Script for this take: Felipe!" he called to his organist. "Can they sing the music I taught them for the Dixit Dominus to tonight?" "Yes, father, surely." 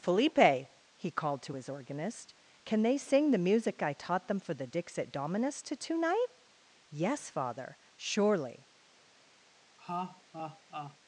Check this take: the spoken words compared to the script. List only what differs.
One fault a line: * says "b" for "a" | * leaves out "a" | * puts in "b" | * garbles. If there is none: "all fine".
all fine